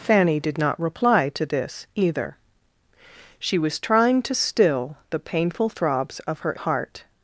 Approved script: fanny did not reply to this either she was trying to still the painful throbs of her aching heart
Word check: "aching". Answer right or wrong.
wrong